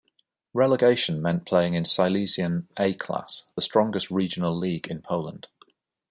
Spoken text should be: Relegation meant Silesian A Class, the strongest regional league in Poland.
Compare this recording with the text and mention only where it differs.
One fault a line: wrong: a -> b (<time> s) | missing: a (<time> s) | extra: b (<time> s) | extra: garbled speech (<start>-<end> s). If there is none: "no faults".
extra: playing in (1.4 s)